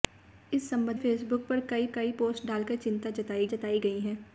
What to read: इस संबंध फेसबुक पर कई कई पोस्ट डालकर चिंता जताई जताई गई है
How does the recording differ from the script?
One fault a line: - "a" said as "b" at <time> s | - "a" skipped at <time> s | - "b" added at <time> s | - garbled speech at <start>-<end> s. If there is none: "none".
none